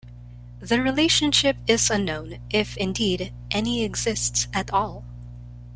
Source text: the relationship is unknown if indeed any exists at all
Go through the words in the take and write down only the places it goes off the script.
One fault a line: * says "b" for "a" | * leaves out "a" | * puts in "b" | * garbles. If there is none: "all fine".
all fine